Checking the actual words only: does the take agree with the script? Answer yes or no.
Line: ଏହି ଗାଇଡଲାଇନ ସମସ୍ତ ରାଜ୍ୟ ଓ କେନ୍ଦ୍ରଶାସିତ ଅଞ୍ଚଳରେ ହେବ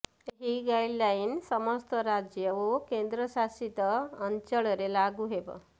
no